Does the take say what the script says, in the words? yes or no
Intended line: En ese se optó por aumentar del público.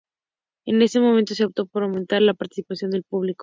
no